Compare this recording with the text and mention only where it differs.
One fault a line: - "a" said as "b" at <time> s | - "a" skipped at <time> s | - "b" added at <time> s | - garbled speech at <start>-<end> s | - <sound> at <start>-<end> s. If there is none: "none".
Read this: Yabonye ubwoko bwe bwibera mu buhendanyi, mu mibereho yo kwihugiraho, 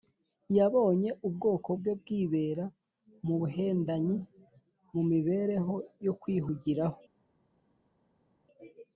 none